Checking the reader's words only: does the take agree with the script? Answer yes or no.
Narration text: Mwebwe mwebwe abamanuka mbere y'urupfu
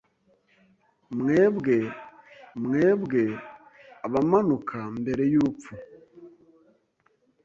yes